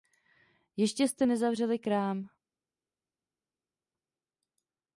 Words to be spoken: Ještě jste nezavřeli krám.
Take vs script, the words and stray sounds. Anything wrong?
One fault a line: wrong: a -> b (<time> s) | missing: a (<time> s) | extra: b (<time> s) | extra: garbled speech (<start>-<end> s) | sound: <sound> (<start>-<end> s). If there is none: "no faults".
no faults